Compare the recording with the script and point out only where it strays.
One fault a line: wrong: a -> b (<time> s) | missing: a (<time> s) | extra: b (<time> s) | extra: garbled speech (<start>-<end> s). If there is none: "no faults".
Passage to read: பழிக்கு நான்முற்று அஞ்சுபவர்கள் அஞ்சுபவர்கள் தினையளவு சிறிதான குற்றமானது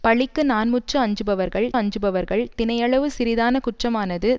no faults